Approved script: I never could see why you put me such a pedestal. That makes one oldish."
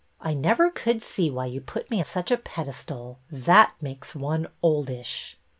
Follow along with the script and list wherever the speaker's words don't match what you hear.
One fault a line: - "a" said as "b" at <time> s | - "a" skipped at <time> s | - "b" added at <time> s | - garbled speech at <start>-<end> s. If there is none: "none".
none